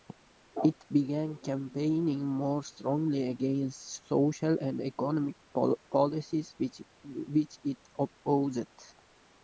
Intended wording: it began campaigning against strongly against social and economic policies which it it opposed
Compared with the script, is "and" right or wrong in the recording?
right